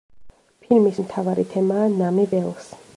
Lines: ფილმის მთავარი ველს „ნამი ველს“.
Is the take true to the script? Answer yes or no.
no